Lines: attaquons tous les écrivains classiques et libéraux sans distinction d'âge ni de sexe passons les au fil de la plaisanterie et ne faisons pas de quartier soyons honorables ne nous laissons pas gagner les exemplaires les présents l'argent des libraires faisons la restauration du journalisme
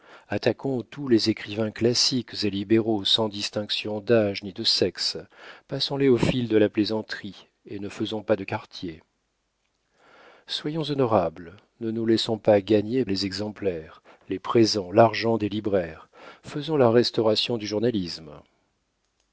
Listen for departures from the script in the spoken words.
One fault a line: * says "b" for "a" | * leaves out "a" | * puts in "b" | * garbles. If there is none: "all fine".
all fine